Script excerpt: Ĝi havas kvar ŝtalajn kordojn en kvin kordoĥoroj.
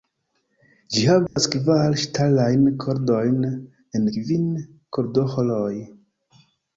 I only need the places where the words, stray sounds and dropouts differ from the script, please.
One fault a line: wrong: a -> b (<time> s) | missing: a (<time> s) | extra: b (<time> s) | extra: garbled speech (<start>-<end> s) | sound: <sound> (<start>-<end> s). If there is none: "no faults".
sound: dropout (1.3-1.4 s)